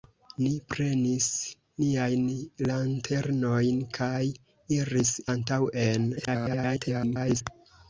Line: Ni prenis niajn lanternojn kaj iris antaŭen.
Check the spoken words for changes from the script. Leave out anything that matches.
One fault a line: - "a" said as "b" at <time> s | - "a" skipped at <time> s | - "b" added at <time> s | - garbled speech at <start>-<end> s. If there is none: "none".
- garbled speech at 6.2-7.4 s